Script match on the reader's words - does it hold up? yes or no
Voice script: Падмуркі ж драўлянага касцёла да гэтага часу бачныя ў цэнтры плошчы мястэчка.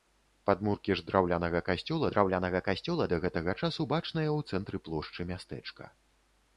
no